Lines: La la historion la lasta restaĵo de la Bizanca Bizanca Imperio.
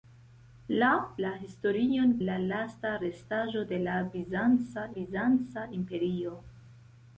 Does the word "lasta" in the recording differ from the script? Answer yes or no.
no